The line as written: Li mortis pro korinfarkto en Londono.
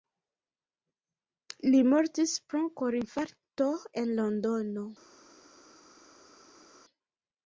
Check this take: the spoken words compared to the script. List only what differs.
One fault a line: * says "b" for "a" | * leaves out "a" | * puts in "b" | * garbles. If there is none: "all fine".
all fine